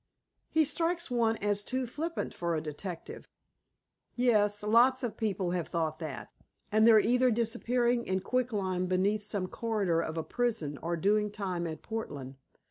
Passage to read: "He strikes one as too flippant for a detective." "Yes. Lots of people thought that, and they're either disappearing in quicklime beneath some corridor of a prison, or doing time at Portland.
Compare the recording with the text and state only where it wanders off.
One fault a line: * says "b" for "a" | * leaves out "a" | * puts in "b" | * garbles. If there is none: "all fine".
* puts in "have"